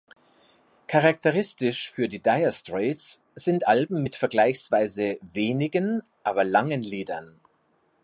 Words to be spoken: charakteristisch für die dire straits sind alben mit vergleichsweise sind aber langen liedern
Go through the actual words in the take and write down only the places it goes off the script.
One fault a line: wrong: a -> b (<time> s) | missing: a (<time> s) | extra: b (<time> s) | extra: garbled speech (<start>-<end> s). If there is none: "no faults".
wrong: sind -> wenigen (5.2 s)